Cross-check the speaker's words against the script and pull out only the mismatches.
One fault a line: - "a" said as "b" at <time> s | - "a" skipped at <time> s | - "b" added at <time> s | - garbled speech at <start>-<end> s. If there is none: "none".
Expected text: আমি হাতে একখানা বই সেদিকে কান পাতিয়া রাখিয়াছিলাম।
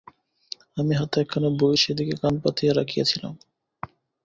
none